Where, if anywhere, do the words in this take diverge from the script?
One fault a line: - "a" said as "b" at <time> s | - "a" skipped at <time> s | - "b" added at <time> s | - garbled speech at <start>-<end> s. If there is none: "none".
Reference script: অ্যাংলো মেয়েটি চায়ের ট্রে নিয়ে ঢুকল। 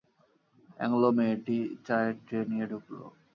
none